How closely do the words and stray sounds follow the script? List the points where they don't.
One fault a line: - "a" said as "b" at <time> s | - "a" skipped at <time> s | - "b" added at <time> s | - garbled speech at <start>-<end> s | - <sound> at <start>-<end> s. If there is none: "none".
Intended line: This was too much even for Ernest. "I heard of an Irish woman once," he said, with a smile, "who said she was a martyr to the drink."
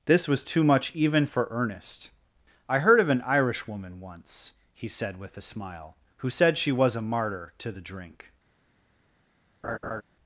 - laugh at 9.6-10.0 s